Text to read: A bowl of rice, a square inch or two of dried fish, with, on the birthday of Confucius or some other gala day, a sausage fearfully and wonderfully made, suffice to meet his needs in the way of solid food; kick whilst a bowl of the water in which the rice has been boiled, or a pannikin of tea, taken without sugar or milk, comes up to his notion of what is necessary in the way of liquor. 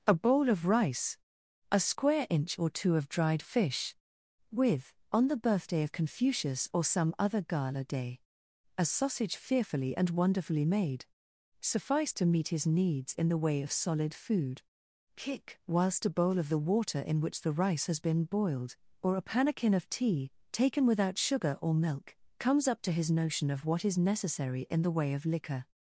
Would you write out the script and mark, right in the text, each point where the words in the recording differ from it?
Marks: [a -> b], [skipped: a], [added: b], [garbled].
A bowl of rice, a square inch or two of dried fish, with, on the birthday of Confucius or some other gala day, a sausage fearfully and wonderfully made, suffice to meet his needs in the way of solid food; kick whilst a bowl of the water in which the rice has been boiled, or a pannikin of tea, taken without sugar or milk, comes up to his notion of what is necessary in the way of liquor.